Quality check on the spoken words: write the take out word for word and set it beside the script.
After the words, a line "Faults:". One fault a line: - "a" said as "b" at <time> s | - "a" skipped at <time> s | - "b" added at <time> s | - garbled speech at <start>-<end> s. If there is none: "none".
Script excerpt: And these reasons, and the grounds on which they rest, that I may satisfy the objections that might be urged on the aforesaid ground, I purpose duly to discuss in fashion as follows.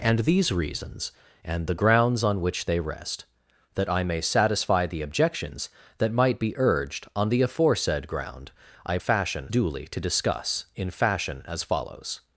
And these reasons, and the grounds on which they rest, that I may satisfy the objections that might be urged on the aforesaid ground, I fashion duly to discuss in fashion as follows.
Faults:
- "purpose" said as "fashion" at 9.0 s